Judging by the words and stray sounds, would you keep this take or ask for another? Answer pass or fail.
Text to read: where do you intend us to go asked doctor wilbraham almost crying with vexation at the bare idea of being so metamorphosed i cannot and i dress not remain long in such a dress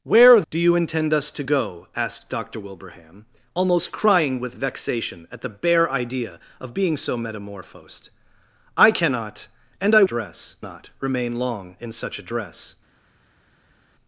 pass